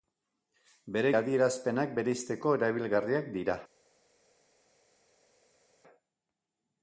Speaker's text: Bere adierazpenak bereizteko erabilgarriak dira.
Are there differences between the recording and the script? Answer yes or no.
no